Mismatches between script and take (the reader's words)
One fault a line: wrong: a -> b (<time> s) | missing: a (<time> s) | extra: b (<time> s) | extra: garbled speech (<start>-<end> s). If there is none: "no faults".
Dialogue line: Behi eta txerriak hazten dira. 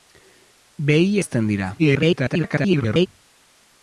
missing: eta txerriak (1.1 s)
extra: garbled speech (1.8-3.1 s)